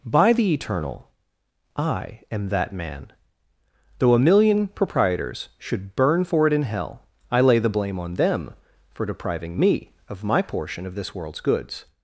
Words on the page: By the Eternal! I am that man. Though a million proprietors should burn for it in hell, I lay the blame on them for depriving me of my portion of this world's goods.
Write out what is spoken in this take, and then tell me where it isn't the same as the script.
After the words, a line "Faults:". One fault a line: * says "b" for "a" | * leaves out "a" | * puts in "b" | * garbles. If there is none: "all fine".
By the Eternal! I am that man. Though a million proprietors should burn for it in hell, I lay the blame on them for depriving me of my portion of this world's goods.
Faults:
all fine